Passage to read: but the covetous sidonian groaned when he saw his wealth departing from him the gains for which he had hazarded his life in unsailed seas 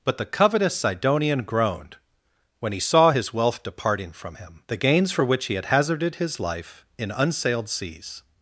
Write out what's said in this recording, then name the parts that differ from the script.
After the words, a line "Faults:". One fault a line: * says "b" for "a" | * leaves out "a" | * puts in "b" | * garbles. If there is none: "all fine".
but the covetous sidonian groaned when he saw his wealth departing from him the gains for which he had hazarded his life in unsailed seas
Faults:
all fine